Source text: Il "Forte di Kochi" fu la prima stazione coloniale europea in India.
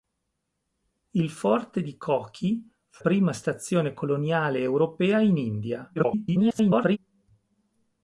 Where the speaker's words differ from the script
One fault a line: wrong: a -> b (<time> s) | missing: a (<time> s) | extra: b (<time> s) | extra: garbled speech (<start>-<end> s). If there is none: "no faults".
missing: la (3.0 s)
extra: garbled speech (6.0-7.0 s)